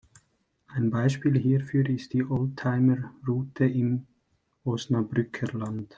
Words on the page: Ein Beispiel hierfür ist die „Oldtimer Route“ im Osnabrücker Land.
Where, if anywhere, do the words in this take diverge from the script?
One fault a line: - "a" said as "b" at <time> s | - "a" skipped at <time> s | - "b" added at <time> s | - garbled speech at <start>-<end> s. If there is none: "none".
none